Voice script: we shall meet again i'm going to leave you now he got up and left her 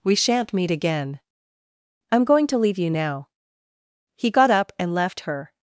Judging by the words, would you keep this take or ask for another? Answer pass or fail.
fail